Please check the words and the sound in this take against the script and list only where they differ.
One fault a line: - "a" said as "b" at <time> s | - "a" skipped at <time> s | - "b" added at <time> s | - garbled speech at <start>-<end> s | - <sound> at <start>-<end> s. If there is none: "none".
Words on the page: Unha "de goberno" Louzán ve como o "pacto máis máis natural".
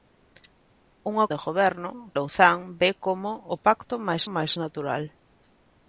none